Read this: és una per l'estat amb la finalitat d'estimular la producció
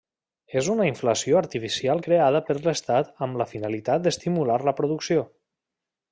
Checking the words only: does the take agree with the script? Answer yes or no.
no